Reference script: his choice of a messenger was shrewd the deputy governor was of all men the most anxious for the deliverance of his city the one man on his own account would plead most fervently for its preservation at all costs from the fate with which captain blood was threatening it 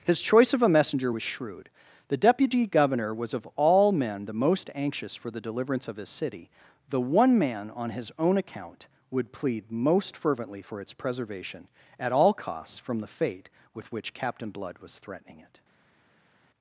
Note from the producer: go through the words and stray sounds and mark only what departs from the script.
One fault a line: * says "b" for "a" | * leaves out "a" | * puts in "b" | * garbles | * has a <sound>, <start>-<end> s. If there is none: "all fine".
all fine